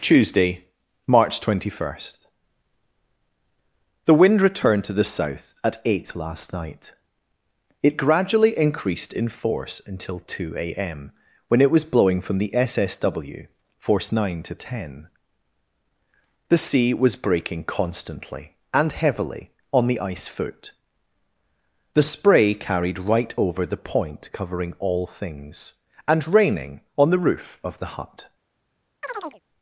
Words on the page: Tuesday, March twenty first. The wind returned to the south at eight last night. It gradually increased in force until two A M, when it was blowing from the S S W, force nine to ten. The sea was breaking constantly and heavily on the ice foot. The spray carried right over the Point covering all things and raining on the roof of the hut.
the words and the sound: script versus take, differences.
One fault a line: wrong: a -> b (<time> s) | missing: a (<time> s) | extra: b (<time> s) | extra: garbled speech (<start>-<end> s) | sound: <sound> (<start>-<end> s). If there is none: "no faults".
sound: chirp (29.0-29.4 s)